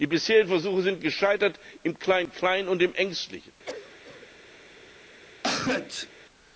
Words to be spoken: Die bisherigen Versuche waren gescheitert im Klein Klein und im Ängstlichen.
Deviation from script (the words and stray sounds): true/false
true